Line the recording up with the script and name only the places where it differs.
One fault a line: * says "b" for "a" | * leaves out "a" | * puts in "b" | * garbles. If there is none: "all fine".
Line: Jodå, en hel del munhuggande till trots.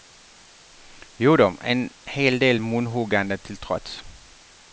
all fine